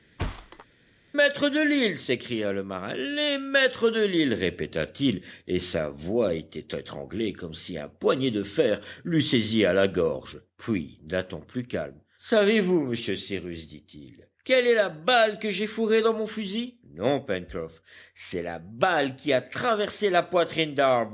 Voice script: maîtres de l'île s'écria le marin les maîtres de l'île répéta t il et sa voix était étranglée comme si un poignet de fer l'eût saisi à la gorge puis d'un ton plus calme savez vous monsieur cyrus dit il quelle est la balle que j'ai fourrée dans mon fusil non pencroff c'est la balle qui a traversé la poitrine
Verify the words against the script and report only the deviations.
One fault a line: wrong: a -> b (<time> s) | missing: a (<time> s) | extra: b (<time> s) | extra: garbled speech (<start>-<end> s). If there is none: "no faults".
no faults